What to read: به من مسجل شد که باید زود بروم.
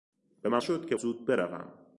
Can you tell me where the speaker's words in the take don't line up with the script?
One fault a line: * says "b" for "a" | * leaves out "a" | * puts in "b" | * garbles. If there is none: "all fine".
* leaves out "مسجل"
* leaves out "باید"